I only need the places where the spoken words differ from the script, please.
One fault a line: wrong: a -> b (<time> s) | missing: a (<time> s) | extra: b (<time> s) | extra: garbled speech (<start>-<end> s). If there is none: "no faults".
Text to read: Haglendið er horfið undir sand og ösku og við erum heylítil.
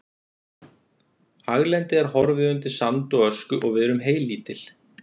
no faults